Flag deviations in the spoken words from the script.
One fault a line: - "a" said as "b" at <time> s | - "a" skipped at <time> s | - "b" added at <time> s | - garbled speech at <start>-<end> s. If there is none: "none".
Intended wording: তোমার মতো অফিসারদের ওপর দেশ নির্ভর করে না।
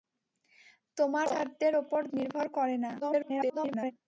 - "মতো" skipped at 1.3 s
- "দেশ" skipped at 2.0 s
- garbled speech at 3.0-3.9 s